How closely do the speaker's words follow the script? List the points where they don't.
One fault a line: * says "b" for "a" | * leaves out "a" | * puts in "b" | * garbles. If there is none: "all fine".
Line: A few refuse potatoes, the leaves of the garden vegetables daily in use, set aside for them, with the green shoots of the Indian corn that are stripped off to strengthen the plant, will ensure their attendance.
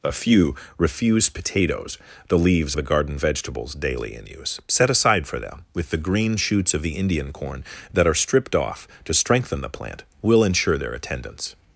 * leaves out "of"